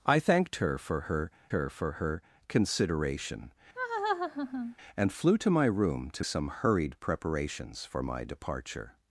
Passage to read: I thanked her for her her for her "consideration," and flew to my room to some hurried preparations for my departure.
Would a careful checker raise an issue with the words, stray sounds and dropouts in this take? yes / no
yes